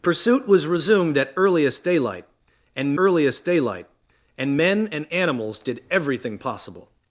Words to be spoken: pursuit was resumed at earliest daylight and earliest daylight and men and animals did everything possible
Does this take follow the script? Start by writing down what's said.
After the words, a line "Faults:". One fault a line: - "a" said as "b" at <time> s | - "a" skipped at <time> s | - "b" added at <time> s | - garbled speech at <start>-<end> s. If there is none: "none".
pursuit was resumed at earliest daylight and earliest daylight and men and animals did everything possible
Faults:
none